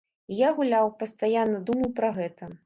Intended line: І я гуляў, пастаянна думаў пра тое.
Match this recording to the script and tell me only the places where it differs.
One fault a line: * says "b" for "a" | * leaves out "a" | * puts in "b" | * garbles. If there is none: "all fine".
* says "гэта" for "тое"